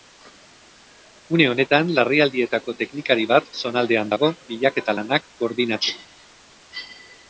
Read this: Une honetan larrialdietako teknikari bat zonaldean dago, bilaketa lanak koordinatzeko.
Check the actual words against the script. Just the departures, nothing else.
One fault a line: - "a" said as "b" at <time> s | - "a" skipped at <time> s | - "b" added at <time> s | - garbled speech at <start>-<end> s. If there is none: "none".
none